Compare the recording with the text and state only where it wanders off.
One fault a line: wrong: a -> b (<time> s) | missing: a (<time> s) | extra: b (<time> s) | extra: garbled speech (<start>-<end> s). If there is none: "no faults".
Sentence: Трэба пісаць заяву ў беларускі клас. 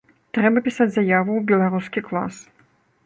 no faults